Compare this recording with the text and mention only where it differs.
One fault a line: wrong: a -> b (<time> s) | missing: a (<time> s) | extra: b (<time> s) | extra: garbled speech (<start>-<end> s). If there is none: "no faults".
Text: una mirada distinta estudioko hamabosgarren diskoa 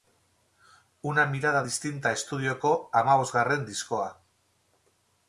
no faults